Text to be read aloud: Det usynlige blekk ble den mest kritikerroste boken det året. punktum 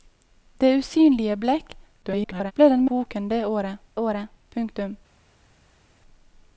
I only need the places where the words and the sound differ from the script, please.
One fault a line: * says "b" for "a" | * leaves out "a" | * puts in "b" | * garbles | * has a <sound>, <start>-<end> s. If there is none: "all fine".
* garbles
* leaves out "mest kritikerroste"
* puts in "året"